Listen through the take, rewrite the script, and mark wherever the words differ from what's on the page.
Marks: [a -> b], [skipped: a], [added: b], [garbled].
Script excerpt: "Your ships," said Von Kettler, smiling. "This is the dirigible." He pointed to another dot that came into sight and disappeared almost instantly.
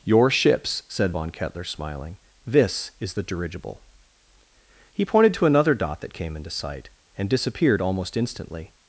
"Your ships," said Von Kettler, smiling. "This is the dirigible." He pointed to another dot that came into sight and disappeared almost instantly.